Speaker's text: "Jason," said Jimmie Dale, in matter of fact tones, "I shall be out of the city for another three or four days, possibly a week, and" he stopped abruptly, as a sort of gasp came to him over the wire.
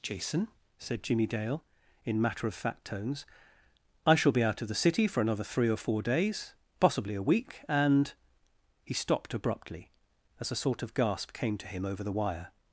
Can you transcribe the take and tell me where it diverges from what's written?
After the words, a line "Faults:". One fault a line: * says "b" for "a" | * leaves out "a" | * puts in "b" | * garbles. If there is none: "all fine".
"Jason," said Jimmie Dale, in matter of fact tones, "I shall be out of the city for another three or four days, possibly a week, and" he stopped abruptly, as a sort of gasp came to him over the wire.
Faults:
all fine